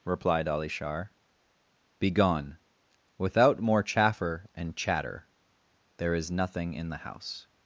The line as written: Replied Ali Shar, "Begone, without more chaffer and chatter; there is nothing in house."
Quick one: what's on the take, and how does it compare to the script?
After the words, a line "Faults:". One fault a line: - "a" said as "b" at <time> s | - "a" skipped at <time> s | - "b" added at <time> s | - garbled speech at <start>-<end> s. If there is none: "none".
Replied Ali Shar, "Begone, without more chaffer and chatter; there is nothing in the house."
Faults:
- "the" added at 6.9 s